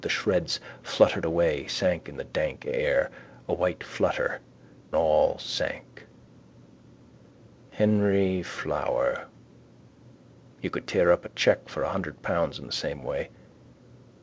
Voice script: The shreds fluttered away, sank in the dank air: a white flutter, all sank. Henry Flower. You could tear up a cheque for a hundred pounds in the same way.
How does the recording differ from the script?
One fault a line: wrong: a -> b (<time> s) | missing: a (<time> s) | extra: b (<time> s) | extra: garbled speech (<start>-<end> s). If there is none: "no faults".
no faults